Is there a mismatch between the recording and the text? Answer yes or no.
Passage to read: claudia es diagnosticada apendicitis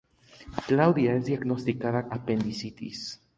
no